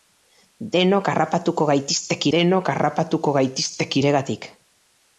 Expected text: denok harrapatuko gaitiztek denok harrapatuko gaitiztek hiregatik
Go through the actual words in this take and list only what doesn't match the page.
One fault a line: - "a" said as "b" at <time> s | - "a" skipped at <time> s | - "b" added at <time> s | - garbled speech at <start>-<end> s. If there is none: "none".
none